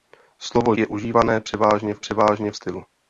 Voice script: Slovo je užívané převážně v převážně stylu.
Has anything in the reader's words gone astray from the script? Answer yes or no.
no